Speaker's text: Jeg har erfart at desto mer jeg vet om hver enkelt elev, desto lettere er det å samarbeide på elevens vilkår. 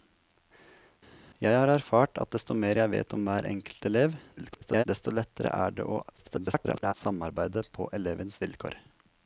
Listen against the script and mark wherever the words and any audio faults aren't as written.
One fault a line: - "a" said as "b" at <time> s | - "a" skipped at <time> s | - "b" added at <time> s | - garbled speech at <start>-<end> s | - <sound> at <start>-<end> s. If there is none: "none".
- garbled speech at 4.4-4.8 s
- garbled speech at 6.2-6.9 s